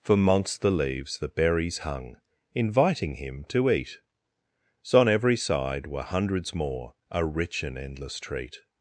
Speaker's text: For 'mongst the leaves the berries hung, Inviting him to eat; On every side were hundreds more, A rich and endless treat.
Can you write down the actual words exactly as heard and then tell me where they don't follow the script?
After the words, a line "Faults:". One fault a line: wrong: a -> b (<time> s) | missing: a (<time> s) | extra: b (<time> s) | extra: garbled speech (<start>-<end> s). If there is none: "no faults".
For 'mongst the leaves the berries hung, Inviting him to eat; so On every side were hundreds more, A rich and endless treat.
Faults:
extra: so (4.8 s)